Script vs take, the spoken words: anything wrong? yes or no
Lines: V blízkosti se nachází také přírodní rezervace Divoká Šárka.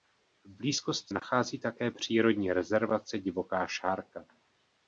yes